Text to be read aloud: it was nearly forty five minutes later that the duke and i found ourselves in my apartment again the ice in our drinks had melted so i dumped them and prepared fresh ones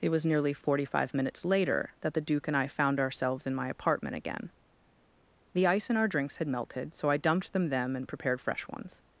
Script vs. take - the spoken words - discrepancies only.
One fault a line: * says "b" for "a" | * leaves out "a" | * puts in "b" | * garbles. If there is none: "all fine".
* puts in "them"